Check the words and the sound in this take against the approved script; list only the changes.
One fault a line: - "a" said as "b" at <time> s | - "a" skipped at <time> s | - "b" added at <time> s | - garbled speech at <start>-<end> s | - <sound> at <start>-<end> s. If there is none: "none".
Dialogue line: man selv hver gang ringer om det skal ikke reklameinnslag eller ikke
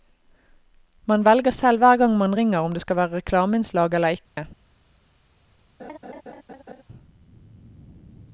- "velger" added at 1.2 s
- "man" added at 2.2 s
- "ikke" said as "være" at 3.0 s
- dropout at 4.2-4.4 s
- laugh at 5.8-6.8 s